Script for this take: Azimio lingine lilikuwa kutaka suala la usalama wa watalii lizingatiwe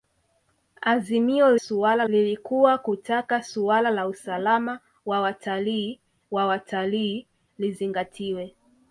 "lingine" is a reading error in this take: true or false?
true